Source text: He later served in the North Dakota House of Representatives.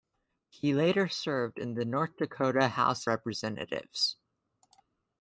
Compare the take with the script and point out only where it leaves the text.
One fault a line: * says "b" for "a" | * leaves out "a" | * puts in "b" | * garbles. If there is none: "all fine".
* leaves out "of"